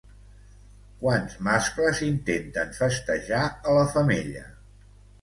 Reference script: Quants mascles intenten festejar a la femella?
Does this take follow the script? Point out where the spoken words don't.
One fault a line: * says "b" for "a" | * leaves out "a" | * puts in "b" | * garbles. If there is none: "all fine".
all fine